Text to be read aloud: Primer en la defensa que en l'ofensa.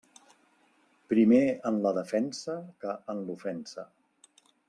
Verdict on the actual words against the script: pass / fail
pass